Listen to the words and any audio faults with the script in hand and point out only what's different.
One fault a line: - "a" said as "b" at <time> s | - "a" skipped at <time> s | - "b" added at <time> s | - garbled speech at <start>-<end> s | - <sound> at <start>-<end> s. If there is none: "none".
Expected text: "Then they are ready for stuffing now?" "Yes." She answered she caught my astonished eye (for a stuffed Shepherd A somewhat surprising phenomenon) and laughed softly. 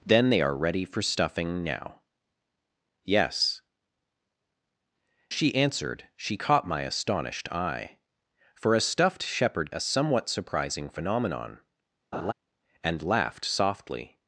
- laugh at 12.1-12.3 s